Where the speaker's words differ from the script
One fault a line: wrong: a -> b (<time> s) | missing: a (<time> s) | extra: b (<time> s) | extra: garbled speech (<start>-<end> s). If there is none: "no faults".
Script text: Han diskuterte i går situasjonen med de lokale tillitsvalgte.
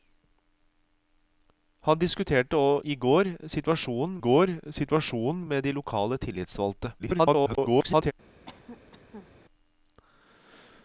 extra: går situasjonen (4.2 s)
extra: garbled speech (7.0-8.1 s)